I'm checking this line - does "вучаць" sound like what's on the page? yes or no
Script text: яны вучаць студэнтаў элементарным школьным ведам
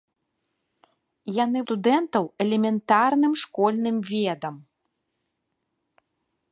no